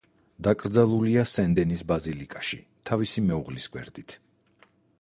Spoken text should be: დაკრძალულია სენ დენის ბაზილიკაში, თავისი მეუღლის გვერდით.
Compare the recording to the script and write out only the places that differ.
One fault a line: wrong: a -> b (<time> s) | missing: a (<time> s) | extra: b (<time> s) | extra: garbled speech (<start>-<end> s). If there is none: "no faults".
no faults